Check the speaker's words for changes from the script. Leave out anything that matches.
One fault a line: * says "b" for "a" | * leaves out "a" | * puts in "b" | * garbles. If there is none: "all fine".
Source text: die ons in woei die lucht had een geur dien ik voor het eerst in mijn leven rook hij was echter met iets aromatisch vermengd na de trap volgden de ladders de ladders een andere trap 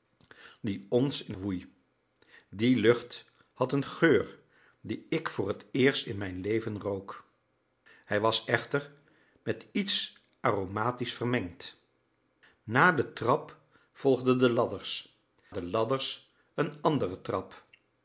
all fine